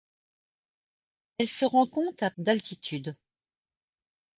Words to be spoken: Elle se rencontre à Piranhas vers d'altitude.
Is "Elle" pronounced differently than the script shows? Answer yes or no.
no